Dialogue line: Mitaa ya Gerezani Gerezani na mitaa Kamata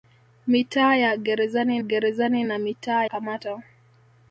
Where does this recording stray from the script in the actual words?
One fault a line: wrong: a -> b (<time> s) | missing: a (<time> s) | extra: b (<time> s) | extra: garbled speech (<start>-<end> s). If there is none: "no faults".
no faults